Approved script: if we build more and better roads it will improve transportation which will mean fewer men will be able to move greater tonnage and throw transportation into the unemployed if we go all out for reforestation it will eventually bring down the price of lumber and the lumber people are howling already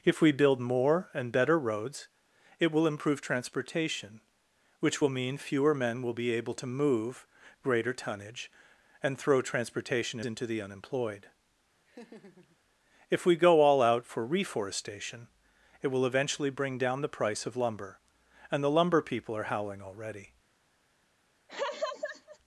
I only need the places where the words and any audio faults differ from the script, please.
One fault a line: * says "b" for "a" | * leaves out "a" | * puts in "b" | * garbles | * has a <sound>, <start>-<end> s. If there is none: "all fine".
* has a laugh, 11.9-12.6 s
* has a laugh, 21.5-22.4 s